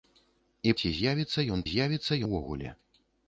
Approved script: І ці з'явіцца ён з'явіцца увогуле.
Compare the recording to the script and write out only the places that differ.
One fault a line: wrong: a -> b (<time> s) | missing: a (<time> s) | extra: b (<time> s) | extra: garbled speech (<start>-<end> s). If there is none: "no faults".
no faults